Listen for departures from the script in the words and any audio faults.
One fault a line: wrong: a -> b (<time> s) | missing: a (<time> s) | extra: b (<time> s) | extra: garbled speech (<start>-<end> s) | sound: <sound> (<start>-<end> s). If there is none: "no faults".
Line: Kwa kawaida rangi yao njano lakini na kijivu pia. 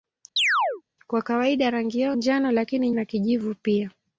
sound: chirp (0.4-0.8 s)